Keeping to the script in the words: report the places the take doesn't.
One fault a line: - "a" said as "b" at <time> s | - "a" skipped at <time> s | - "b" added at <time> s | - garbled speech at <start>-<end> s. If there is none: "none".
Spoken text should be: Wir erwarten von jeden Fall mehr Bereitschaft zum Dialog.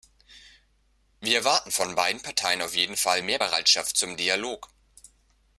- "beiden Parteien auf" added at 1.9 s